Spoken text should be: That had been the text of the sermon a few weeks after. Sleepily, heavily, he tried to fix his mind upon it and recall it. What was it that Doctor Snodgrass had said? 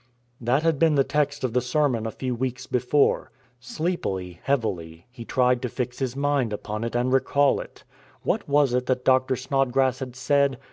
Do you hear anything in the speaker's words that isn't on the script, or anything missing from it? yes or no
yes